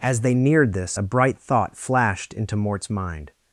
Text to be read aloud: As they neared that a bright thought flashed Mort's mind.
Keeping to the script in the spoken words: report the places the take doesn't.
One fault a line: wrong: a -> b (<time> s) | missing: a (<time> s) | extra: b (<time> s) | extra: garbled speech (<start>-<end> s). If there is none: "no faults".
wrong: that -> this (0.7 s)
extra: into (2.3 s)